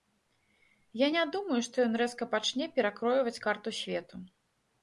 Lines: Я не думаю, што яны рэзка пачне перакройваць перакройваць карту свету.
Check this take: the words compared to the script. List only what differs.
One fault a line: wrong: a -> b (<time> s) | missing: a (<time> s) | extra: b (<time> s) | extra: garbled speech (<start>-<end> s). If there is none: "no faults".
wrong: яны -> ён (1.9 s)
missing: перакройваць (3.4 s)